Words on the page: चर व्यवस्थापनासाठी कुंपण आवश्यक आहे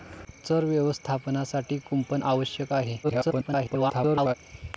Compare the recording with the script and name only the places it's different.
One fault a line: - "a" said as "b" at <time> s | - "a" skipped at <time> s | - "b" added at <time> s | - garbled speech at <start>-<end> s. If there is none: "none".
- garbled speech at 3.0-4.3 s